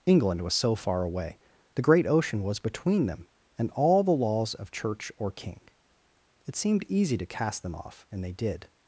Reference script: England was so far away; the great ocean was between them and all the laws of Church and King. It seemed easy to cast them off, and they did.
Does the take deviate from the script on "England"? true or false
false